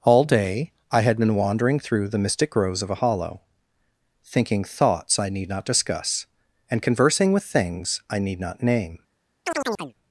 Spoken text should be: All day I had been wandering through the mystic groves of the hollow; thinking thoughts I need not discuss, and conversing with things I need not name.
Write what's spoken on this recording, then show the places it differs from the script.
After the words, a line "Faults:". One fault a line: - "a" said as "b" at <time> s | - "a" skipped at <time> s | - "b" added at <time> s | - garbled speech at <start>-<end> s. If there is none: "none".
All day I had been wandering through the mystic groves of a hollow; thinking thoughts I need not discuss, and conversing with things I need not name.
Faults:
- "the" said as "a" at 2.9 s